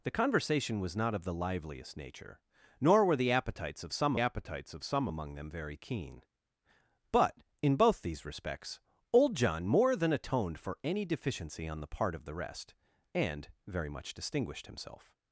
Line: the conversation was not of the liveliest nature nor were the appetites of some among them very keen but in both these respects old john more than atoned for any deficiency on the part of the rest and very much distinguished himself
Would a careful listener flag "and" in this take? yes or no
no